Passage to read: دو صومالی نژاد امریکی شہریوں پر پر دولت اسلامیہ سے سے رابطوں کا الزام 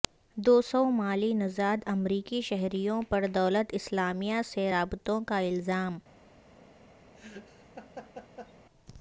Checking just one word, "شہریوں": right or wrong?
right